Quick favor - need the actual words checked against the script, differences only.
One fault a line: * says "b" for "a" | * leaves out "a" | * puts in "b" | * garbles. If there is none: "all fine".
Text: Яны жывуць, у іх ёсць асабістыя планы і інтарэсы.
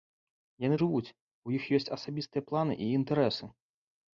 all fine